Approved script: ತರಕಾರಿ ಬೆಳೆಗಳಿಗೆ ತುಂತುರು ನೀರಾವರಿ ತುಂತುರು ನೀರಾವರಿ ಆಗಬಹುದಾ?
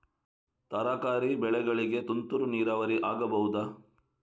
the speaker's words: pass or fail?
fail